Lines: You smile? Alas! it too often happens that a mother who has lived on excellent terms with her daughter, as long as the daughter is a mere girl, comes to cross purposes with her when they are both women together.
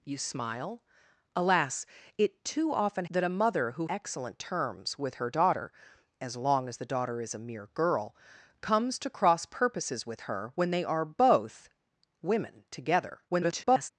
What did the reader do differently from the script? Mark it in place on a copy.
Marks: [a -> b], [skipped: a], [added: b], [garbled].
You smile? Alas! it too often [skipped: happens] that a mother who [skipped: has lived on] excellent terms with her daughter, as long as the daughter is a mere girl, comes to cross purposes with her when they are both women together. [garbled]